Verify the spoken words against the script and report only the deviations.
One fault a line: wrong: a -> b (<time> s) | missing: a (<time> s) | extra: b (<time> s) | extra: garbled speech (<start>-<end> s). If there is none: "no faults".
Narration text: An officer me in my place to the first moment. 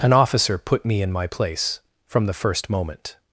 extra: put (0.6 s)
wrong: to -> from (2.1 s)